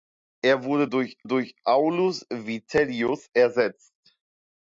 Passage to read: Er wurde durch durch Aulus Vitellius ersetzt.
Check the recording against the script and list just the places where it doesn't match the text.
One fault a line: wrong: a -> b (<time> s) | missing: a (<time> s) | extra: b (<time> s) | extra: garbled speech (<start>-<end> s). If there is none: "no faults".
no faults